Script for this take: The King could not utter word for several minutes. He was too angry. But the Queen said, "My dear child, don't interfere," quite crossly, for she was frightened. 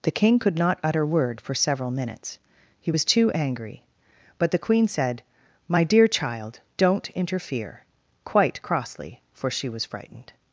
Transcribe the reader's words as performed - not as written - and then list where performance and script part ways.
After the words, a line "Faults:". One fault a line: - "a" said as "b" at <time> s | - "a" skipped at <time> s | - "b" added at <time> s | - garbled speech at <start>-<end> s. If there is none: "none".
The King could not utter word for several minutes. He was too angry. But the Queen said, "My dear child, don't interfere," quite crossly, for she was frightened.
Faults:
none